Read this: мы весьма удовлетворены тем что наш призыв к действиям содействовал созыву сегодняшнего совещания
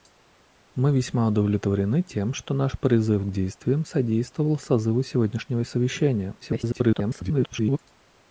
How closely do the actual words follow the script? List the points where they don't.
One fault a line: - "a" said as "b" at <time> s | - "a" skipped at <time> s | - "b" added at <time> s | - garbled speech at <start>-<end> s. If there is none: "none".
- garbled speech at 6.4-7.8 s